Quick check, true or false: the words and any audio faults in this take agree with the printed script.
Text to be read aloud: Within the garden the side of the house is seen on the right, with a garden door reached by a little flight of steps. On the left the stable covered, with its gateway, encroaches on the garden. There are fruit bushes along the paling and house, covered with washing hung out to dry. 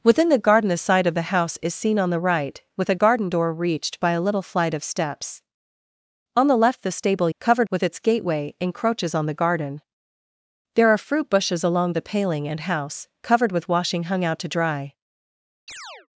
false